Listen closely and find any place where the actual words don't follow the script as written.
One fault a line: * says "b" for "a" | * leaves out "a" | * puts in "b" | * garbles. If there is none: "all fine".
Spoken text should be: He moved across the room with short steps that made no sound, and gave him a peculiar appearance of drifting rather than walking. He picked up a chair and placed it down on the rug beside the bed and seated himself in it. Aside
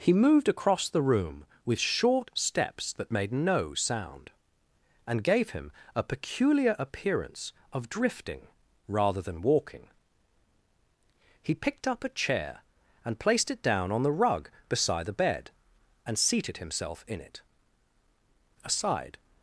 all fine